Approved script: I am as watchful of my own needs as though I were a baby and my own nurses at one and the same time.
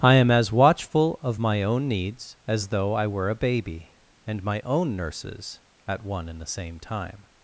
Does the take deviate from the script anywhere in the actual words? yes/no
no